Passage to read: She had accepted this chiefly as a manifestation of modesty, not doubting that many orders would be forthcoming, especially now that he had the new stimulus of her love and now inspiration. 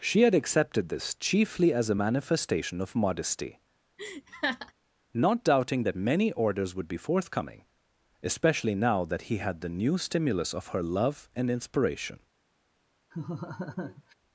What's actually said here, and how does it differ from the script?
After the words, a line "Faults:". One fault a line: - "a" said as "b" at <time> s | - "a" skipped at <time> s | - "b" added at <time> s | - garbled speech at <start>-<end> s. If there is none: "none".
She had accepted this chiefly as a manifestation of modesty, not doubting that many orders would be forthcoming, especially now that he had the new stimulus of her love and inspiration.
Faults:
- "now" skipped at 11.5 s